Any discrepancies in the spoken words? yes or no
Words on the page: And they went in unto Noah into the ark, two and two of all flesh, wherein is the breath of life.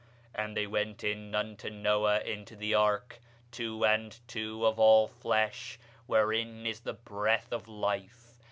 no